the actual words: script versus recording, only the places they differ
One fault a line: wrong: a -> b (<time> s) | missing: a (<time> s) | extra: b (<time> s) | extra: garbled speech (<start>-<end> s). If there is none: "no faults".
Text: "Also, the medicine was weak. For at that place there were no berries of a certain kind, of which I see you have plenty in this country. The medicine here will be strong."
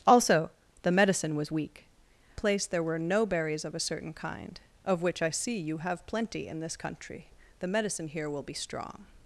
missing: For at that (1.8 s)